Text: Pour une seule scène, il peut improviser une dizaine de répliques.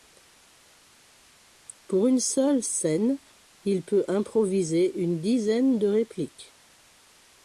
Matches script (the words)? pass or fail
pass